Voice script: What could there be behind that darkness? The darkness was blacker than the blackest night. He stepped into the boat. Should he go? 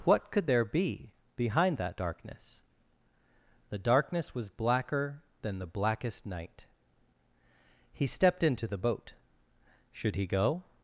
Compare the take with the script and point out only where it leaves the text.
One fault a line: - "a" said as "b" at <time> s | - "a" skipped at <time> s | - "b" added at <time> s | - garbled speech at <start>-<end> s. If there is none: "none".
none